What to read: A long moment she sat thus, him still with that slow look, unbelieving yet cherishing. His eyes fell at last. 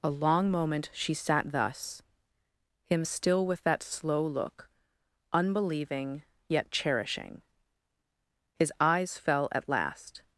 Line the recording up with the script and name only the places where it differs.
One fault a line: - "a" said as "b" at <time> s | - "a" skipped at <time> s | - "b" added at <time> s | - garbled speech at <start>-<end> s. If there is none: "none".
none